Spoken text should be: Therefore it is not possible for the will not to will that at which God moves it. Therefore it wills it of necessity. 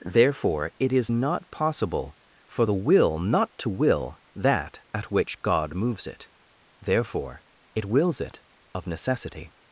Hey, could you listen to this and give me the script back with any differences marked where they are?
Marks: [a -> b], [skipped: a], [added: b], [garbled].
Therefore it is not possible for the will not to will that at which God moves it. Therefore it wills it of necessity.